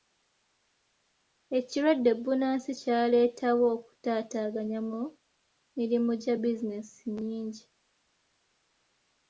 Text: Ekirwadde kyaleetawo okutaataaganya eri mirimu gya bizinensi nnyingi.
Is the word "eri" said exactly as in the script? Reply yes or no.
no